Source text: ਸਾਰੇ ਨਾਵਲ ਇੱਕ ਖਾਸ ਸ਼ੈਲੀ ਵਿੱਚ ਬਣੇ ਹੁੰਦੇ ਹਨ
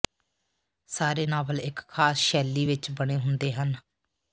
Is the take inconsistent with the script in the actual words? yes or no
no